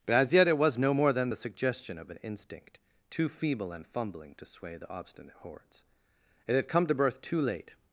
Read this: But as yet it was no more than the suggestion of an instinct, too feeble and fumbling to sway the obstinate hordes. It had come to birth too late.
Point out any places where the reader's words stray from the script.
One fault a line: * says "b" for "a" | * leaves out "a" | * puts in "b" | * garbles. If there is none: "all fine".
all fine